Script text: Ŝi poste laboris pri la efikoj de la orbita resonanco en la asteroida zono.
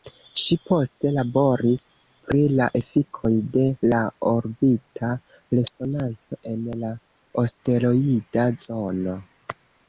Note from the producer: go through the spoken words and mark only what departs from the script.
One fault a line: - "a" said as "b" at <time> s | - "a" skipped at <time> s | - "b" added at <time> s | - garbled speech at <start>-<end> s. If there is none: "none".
none